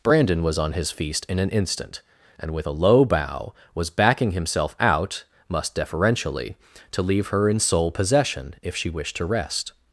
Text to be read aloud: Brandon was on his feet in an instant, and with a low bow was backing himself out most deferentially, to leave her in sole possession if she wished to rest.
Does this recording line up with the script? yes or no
no